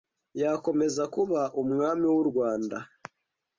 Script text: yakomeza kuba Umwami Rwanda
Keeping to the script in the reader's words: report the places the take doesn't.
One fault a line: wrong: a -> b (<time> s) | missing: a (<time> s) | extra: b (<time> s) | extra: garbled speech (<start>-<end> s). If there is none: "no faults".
extra: w'u (2.1 s)